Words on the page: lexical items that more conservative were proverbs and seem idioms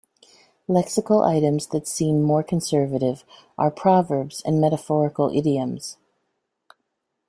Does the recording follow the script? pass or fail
fail